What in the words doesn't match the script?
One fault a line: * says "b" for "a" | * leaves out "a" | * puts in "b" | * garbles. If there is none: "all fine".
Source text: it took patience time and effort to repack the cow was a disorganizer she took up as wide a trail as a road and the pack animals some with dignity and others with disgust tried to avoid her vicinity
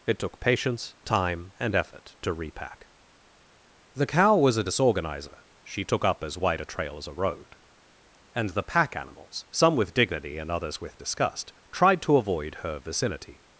all fine